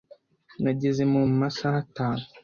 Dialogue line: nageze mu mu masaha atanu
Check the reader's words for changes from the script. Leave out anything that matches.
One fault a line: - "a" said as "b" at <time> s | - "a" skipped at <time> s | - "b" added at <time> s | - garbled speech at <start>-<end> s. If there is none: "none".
none